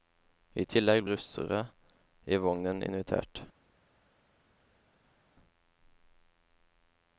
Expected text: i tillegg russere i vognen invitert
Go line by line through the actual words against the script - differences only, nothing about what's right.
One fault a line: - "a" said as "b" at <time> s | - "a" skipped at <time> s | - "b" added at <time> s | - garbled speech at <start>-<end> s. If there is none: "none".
none